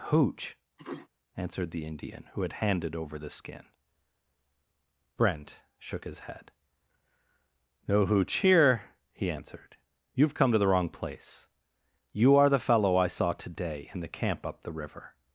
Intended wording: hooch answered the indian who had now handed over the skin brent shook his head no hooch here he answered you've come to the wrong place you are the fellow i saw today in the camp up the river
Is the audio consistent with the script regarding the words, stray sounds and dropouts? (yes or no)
no